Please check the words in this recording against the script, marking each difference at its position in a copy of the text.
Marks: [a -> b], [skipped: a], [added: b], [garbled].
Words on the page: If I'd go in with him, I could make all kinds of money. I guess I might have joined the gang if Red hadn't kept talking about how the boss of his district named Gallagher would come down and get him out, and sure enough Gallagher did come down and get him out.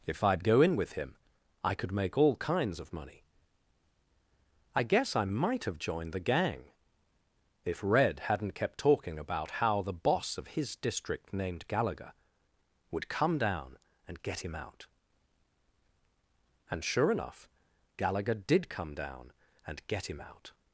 If I'd go in with him, I could make all kinds of money. I guess I might have joined the gang if Red hadn't kept talking about how the boss of his district named Gallagher would come down and get him out, and sure enough Gallagher did come down and get him out.